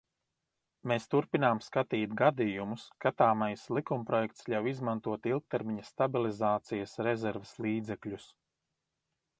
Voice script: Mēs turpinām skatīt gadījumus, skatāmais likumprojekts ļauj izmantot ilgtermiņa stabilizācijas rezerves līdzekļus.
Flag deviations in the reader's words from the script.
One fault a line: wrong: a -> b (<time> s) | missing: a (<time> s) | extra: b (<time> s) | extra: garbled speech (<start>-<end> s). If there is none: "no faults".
no faults